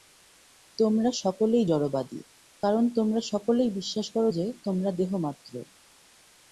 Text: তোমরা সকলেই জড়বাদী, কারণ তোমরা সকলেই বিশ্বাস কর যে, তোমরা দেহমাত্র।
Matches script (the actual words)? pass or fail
pass